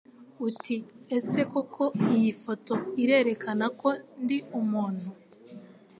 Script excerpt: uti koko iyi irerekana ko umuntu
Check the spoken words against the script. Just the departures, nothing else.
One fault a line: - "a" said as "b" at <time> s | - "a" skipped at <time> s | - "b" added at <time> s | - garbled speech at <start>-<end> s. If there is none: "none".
- "ese" added at 1.2 s
- "foto" added at 2.4 s
- "ndi" added at 4.2 s